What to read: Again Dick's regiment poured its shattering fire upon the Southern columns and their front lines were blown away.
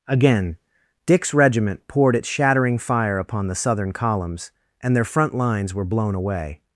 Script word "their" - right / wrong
right